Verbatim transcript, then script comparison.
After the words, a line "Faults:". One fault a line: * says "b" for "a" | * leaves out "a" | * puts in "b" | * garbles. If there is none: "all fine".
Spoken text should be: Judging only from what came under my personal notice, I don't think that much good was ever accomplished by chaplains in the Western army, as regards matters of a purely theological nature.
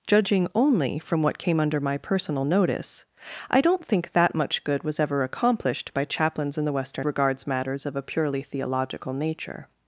Judging only from what came under my personal notice, I don't think that much good was ever accomplished by chaplains in the Western regards matters of a purely theological nature.
Faults:
* leaves out "army as"